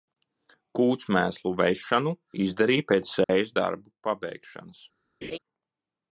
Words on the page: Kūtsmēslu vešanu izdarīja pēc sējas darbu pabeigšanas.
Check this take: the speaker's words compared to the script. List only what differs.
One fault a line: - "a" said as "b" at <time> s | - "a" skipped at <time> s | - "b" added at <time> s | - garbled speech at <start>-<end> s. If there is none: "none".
none